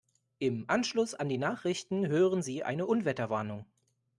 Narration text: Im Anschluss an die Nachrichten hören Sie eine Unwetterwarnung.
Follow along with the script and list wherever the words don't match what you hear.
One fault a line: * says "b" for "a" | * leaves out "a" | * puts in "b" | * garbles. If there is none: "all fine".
all fine